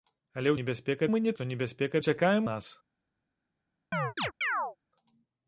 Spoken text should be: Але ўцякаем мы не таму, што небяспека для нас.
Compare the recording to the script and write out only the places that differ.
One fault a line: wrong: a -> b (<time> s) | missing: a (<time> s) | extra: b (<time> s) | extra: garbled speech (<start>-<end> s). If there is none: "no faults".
wrong: ўцякаем -> небяспека (0.6 s)
missing: таму (1.3 s)
wrong: для -> ўцякаем (2.0 s)